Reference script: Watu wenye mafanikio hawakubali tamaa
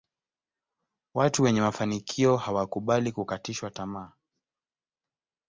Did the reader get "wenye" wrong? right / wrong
right